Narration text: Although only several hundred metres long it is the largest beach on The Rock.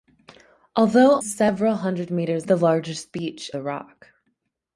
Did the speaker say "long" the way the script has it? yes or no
no